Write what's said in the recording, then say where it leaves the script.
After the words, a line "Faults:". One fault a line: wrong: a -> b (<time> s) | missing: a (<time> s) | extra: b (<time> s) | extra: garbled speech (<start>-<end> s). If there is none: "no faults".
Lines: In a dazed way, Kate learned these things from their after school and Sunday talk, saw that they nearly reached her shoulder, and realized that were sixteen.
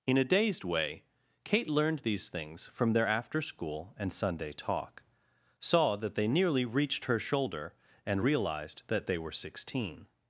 In a dazed way, Kate learned these things from their after school and Sunday talk, saw that they nearly reached her shoulder, and realized that they were sixteen.
Faults:
extra: they (9.1 s)